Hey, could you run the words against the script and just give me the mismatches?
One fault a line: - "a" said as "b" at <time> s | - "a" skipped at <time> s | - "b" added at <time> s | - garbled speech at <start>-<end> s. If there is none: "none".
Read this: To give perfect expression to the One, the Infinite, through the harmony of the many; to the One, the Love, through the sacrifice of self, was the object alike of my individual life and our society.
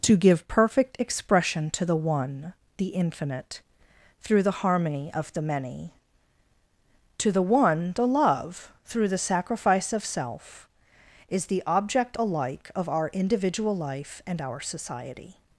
- "was" said as "is" at 11.3 s
- "my" said as "our" at 12.9 s